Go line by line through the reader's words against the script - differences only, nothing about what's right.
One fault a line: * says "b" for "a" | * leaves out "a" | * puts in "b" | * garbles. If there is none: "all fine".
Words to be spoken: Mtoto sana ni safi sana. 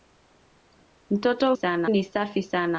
all fine